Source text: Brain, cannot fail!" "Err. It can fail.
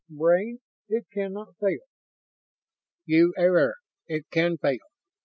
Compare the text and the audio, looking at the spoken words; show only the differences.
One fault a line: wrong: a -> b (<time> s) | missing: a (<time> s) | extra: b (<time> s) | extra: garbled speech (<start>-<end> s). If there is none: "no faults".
extra: it (0.9 s)
extra: You (3.0 s)